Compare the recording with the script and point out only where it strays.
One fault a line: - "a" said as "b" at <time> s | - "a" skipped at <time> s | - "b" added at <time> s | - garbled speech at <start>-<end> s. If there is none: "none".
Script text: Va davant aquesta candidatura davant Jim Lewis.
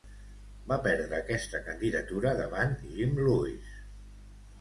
- "davant" said as "perdre" at 0.8 s